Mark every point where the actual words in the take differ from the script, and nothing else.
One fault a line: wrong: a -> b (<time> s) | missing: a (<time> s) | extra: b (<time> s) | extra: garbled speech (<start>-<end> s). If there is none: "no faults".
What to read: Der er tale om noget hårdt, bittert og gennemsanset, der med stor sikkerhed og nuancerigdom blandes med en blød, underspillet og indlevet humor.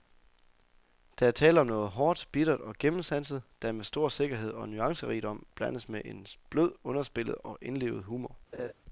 no faults